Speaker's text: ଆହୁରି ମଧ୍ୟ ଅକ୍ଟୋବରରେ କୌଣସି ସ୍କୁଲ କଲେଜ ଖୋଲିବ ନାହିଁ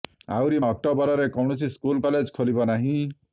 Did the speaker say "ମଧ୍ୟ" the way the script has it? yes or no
no